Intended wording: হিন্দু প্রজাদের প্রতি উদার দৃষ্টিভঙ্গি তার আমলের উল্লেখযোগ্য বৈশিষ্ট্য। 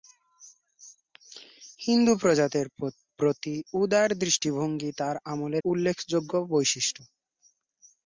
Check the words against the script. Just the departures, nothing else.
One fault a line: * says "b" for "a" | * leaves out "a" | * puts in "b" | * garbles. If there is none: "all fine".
all fine